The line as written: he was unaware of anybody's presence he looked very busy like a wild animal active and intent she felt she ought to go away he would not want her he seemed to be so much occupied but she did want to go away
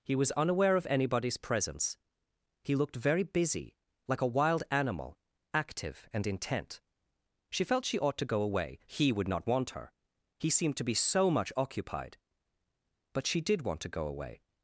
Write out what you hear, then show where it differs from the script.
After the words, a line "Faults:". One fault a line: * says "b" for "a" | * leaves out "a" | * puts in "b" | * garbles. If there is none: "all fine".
he was unaware of anybody's presence he looked very busy like a wild animal active and intent she felt she ought to go away he would not want her he seemed to be so much occupied but she did want to go away
Faults:
all fine